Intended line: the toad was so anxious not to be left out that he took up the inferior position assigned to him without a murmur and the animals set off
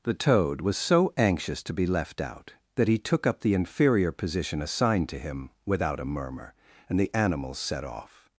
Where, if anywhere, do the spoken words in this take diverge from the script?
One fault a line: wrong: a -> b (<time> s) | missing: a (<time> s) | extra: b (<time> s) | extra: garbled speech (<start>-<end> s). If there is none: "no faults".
missing: not (1.6 s)